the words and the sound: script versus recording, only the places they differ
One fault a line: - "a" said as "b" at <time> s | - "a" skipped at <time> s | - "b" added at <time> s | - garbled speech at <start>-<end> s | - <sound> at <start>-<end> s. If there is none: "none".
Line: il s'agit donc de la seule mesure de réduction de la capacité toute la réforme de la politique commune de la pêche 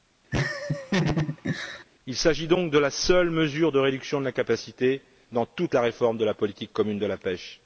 - laugh at 0.3-1.8 s
- "dans" added at 5.3 s